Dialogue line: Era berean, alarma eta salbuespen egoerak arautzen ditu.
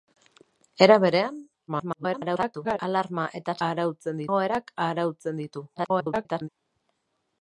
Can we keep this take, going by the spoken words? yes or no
no